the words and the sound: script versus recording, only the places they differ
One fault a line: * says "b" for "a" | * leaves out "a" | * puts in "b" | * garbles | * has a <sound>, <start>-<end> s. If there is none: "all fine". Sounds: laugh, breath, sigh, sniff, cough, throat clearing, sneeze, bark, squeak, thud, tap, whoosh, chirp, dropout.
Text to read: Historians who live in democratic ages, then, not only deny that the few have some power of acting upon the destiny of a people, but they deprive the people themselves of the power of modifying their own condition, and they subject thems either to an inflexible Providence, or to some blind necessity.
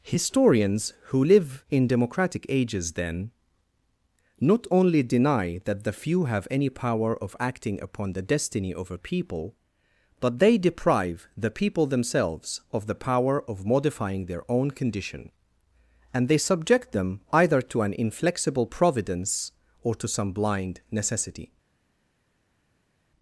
* says "any" for "some"
* says "them" for "thems"